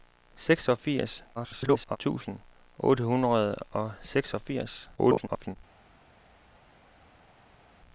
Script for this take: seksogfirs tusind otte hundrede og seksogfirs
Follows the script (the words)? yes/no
no